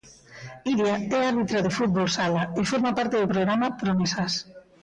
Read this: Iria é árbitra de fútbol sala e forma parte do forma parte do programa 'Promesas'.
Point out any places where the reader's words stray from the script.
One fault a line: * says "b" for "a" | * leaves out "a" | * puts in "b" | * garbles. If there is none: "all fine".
* leaves out "forma parte do"